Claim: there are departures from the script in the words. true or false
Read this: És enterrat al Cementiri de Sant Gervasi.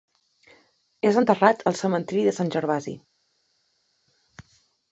false